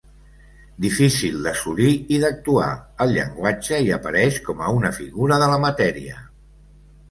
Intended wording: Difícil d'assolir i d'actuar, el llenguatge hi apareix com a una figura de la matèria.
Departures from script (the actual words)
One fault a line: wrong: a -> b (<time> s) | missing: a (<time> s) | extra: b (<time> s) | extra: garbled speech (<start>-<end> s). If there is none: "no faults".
no faults